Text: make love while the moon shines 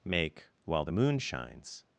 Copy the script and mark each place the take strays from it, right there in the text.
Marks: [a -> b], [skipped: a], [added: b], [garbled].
make [skipped: love] while the moon shines